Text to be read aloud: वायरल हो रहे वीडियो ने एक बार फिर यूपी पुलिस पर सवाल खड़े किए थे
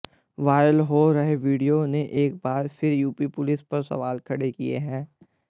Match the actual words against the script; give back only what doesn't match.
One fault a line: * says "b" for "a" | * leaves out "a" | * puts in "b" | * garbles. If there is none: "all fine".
* says "हैं" for "थे"